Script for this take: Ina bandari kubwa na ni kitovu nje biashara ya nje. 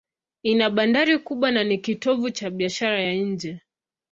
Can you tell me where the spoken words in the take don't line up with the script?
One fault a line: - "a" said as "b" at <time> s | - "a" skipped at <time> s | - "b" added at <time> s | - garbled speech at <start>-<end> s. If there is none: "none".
- "nje" said as "cha" at 2.3 s